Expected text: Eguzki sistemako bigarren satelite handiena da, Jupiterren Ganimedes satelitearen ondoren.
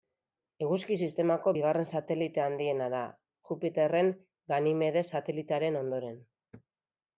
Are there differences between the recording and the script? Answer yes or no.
no